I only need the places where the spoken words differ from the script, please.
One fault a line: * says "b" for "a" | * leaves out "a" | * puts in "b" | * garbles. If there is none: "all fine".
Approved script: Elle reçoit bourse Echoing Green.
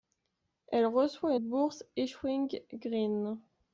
all fine